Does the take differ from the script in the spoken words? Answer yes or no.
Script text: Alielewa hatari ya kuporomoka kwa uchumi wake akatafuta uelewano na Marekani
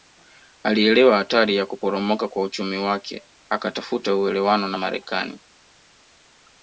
no